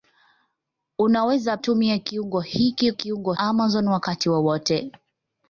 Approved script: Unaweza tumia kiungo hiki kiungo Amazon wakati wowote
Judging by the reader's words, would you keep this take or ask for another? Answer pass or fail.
pass